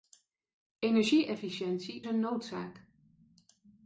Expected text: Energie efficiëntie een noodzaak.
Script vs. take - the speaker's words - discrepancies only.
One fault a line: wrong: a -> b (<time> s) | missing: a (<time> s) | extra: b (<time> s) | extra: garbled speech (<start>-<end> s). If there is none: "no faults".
no faults